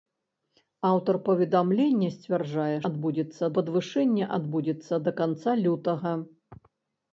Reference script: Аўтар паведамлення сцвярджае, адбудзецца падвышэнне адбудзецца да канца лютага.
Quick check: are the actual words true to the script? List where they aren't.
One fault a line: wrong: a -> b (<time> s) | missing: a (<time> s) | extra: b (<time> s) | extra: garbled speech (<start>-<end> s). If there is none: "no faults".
no faults